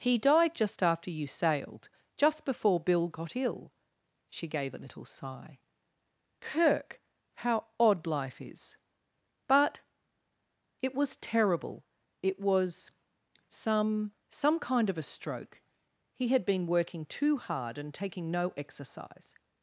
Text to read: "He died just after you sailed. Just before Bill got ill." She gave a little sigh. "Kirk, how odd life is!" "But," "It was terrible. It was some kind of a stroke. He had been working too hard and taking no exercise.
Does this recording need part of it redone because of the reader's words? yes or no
yes